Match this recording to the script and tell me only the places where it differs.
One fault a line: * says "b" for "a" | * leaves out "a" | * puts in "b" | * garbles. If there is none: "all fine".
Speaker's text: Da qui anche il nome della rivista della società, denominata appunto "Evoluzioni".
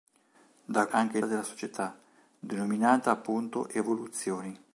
* leaves out "qui"
* leaves out "nome della rivista"